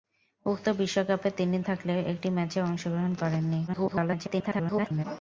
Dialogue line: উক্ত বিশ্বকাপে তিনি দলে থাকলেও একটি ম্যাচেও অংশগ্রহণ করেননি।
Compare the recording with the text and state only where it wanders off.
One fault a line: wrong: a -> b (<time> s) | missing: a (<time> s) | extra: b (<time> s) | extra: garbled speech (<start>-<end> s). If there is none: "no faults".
missing: দলে (1.6 s)
extra: garbled speech (3.7-5.0 s)